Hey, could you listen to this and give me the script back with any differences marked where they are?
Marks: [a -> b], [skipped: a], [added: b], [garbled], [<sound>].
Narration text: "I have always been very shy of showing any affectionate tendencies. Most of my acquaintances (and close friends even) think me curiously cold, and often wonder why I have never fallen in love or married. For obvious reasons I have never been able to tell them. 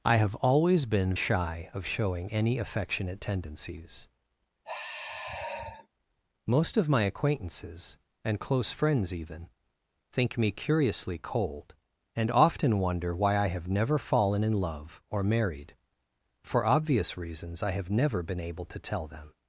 "I have always been [skipped: very] shy of showing any affectionate tendencies. [sigh] Most of my acquaintances (and close friends even) think me curiously cold, and often wonder why I have never fallen in love or married. For obvious reasons I have never been able to tell them.